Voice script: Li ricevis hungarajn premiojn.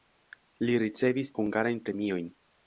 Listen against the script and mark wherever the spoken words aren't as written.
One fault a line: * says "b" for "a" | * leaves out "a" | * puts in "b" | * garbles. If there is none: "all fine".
all fine